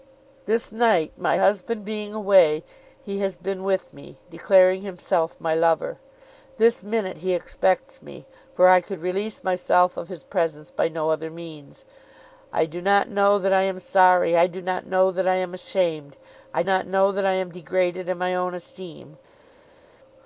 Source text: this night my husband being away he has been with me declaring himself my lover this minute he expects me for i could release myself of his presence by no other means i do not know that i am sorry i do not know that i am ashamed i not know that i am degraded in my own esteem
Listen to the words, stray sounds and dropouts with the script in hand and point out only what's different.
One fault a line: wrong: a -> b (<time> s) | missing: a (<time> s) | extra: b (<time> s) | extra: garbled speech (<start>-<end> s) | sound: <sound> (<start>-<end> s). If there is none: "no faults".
no faults